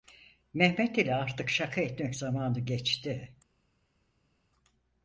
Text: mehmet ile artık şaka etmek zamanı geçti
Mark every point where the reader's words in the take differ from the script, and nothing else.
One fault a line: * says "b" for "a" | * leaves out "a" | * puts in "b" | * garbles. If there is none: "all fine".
all fine